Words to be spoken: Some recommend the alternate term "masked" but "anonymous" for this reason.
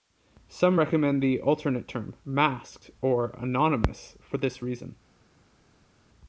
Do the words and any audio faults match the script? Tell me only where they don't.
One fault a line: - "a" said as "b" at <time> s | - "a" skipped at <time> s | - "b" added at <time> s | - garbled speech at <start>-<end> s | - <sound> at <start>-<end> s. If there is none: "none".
- "but" said as "or" at 3.0 s